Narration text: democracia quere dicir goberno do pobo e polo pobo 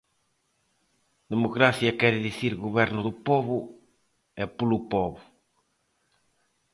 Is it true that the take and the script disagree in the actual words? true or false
false